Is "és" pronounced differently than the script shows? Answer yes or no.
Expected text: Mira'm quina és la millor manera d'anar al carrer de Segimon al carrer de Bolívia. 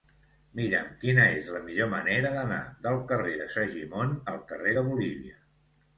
no